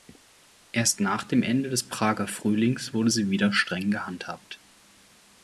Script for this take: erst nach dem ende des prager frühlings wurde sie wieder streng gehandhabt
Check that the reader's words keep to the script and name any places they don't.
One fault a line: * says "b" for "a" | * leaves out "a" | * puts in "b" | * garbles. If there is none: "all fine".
all fine